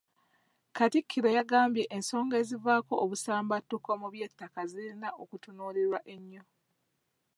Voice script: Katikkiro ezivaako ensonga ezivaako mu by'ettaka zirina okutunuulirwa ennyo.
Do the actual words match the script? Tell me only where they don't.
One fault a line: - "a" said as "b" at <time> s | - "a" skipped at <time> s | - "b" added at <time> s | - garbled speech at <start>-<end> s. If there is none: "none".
- "ezivaako" said as "yagambye" at 1.4 s
- "obusambattuko" added at 3.0 s